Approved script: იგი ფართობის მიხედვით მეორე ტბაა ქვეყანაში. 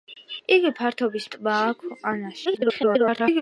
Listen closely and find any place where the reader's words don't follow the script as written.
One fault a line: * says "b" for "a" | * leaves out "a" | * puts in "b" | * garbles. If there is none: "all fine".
* leaves out "მიხედვით მეორე"
* garbles